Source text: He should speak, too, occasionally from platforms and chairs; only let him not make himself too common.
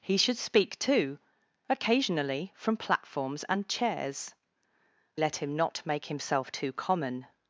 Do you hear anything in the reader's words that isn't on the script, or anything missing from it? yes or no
yes